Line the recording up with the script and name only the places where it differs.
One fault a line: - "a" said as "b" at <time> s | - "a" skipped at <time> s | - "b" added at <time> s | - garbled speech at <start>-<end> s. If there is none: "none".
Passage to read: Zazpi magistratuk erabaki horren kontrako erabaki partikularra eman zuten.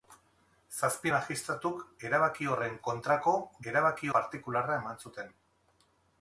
none